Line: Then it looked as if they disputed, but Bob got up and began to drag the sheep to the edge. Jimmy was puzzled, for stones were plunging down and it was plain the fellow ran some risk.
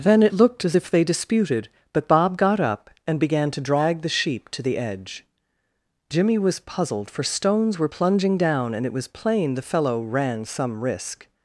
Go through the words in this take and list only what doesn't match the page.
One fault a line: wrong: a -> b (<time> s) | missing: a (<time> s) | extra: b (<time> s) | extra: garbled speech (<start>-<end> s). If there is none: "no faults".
no faults